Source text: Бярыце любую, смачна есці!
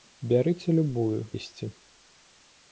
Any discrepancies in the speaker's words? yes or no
yes